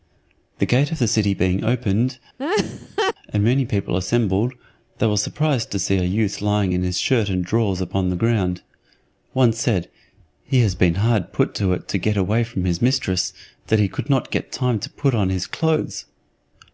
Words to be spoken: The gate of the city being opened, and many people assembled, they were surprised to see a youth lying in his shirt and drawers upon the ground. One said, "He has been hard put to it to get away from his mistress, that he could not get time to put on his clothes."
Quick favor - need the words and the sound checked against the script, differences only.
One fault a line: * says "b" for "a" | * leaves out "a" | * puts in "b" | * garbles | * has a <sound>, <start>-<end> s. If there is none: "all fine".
* has a laugh, 2.4-3.1 s